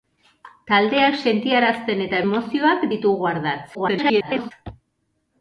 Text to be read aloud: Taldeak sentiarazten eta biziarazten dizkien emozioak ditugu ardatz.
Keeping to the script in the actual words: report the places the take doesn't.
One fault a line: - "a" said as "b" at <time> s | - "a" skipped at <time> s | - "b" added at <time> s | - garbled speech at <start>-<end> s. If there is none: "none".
- "biziarazten dizkien" skipped at 2.2 s
- garbled speech at 3.7-4.5 s